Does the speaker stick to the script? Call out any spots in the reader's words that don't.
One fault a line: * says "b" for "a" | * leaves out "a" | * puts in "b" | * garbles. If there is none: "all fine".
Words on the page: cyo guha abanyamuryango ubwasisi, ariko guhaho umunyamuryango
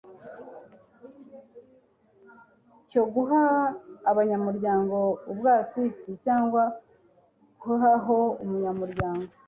* says "cyangwa" for "ariko"